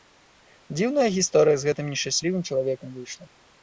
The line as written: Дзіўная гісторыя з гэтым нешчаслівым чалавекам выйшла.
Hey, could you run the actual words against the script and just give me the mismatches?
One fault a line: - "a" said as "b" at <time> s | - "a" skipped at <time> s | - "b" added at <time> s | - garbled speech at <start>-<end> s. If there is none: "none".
none